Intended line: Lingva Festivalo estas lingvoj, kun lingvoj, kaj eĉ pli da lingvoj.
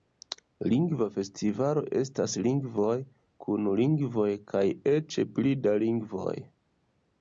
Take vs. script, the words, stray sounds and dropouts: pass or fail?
pass